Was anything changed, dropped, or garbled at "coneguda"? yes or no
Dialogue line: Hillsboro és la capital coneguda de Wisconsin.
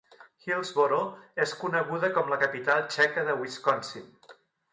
yes